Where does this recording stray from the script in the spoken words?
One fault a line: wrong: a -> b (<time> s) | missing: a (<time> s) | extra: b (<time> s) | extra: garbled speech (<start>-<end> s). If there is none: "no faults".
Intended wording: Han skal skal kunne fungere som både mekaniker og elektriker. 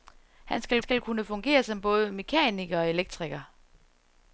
no faults